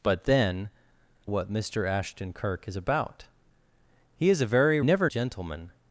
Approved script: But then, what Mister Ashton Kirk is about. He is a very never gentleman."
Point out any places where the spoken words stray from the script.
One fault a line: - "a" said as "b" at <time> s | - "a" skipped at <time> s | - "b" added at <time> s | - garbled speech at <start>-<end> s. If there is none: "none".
none